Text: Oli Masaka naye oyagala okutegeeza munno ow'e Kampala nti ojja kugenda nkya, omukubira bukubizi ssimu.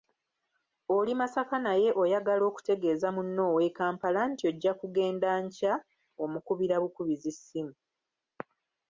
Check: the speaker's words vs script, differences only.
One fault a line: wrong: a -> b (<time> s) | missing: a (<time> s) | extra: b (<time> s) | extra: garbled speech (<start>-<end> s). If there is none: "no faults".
no faults